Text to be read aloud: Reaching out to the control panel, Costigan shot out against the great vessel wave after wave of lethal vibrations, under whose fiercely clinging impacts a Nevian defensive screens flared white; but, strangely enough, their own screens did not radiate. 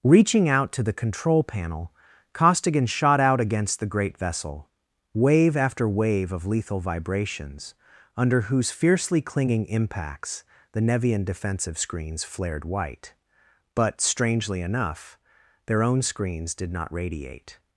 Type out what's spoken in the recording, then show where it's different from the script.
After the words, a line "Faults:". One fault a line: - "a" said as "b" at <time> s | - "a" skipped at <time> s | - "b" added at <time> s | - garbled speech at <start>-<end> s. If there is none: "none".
Reaching out to the control panel, Costigan shot out against the great vessel wave after wave of lethal vibrations, under whose fiercely clinging impacts the Nevian defensive screens flared white; but, strangely enough, their own screens did not radiate.
Faults:
- "a" said as "the" at 10.7 s